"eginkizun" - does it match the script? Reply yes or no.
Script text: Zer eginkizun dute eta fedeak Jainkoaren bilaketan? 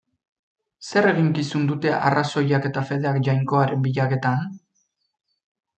yes